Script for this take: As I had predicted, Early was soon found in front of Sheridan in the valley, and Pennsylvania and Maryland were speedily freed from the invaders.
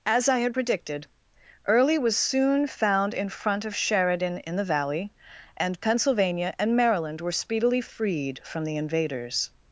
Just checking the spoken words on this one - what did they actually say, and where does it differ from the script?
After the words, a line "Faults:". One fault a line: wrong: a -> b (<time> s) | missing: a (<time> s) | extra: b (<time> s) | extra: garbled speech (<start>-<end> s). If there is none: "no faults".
As I had predicted, Early was soon found in front of Sheridan in the valley, and Pennsylvania and Maryland were speedily freed from the invaders.
Faults:
no faults